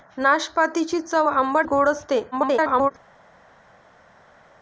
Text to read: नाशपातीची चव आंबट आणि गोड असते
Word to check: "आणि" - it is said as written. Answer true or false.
false